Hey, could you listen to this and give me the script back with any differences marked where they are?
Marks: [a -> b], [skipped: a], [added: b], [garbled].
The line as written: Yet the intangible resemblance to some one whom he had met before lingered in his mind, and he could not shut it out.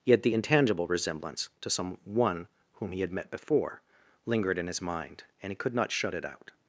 Yet the intangible resemblance to some one whom he had met before lingered in his mind, and he could not shut it out.